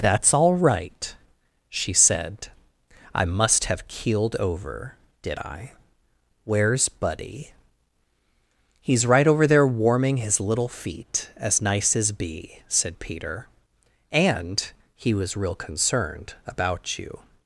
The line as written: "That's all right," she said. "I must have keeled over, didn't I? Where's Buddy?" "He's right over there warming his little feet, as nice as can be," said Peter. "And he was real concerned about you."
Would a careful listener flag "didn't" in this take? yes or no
yes